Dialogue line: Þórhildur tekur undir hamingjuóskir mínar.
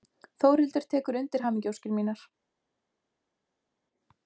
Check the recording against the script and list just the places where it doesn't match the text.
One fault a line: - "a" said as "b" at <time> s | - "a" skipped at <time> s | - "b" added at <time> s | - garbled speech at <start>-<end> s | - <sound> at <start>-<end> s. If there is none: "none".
none